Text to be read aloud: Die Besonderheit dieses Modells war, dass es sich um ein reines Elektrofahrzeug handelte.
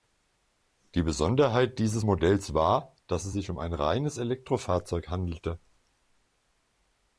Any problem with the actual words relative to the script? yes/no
no